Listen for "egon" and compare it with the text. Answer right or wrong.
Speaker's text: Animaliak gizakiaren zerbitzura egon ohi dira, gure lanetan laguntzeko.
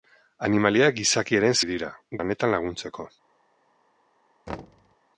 wrong